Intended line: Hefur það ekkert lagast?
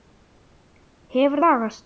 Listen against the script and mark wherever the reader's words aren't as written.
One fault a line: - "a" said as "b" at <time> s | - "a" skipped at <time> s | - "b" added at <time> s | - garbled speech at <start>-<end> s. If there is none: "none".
- "það ekkert" skipped at 1.4 s